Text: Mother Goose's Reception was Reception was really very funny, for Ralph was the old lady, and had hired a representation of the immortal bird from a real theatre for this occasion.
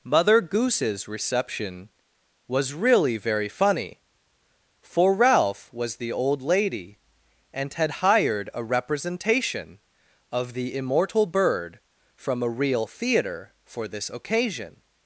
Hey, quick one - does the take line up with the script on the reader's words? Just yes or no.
no